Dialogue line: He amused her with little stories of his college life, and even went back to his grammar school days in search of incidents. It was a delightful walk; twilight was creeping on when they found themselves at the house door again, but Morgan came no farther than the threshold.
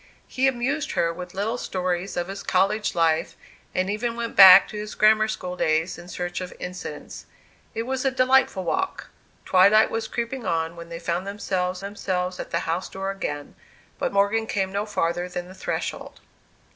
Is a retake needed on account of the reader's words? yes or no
yes